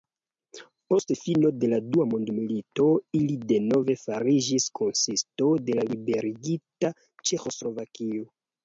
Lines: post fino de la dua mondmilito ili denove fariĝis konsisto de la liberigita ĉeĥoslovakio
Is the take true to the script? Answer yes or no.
yes